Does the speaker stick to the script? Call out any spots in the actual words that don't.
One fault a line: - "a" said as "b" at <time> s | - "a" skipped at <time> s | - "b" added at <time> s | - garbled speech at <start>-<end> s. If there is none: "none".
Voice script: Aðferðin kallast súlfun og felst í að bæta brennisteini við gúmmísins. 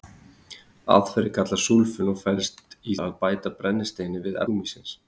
none